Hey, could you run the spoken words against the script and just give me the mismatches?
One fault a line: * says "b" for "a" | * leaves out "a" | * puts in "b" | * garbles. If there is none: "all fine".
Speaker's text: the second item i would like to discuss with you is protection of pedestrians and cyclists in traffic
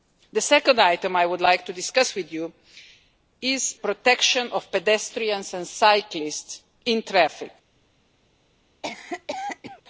all fine